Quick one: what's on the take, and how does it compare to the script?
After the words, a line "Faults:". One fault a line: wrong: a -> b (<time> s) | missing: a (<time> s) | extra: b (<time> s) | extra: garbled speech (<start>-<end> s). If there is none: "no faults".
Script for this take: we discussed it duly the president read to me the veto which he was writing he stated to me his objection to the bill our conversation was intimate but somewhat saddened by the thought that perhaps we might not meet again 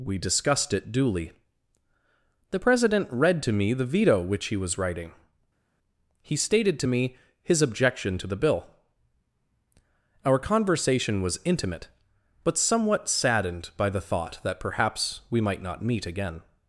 we discussed it duly the president read to me the veto which he was writing he stated to me his objection to the bill our conversation was intimate but somewhat saddened by the thought that perhaps we might not meet again
Faults:
no faults